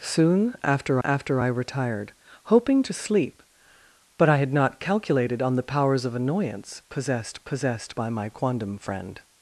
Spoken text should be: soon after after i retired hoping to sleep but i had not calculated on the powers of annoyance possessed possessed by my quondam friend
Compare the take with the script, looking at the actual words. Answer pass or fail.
pass